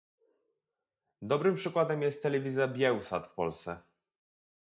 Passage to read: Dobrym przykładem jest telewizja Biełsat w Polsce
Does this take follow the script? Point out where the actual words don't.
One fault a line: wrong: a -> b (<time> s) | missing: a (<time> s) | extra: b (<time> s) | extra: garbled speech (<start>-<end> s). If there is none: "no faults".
no faults